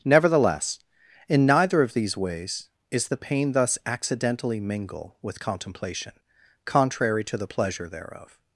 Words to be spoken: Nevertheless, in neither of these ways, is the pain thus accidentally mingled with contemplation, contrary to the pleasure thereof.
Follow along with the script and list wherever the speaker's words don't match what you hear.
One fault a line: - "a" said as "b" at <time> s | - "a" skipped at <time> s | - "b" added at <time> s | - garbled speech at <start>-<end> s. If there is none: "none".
- "mingled" said as "mingle" at 4.6 s